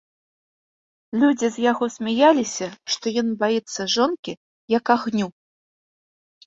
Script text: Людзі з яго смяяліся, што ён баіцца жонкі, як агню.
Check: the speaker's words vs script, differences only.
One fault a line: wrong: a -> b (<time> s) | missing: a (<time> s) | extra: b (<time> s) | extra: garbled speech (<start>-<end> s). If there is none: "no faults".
no faults